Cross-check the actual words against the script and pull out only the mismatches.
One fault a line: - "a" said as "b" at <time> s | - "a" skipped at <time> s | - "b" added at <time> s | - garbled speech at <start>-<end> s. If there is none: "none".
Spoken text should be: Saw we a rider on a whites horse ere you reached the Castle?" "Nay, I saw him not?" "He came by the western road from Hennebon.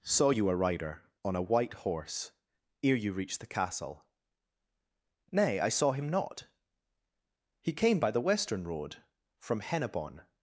- "we" said as "you" at 0.3 s
- "whites" said as "white" at 1.4 s